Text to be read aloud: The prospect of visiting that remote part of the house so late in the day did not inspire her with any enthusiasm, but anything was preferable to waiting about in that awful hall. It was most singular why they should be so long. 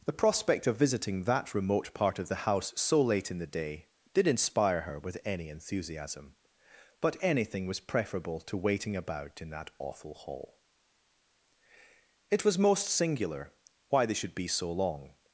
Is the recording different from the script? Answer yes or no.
yes